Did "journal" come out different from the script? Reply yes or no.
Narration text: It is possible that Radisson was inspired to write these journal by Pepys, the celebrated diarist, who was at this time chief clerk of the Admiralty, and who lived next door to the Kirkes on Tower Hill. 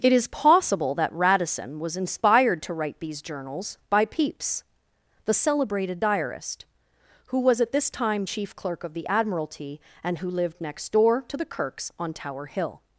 yes